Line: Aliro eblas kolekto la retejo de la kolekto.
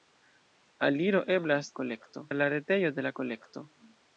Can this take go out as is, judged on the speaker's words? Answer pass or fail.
pass